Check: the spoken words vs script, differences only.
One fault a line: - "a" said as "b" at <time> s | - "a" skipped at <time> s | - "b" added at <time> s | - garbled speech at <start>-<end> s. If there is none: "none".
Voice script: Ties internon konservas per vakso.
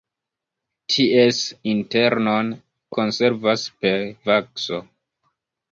none